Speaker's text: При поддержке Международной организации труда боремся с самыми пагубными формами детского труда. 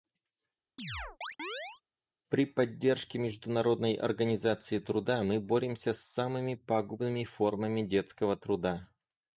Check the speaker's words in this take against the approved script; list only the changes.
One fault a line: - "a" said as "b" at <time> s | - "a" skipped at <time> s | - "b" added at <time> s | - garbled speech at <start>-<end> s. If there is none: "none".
- "мы" added at 5.2 s